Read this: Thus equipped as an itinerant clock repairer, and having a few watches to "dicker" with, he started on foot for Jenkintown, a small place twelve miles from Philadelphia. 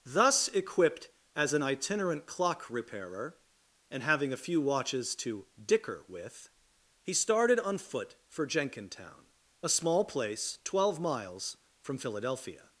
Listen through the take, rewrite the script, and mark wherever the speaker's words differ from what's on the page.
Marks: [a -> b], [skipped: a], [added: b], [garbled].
Thus equipped as an itinerant clock repairer, and having a few watches to "dicker" with, he started on foot for Jenkintown, a small place twelve miles from Philadelphia.